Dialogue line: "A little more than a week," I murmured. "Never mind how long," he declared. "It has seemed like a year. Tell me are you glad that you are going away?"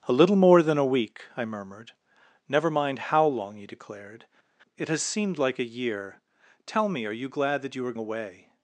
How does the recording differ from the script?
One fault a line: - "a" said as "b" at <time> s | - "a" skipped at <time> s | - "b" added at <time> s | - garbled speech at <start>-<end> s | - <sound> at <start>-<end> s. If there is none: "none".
- "going" skipped at 7.9 s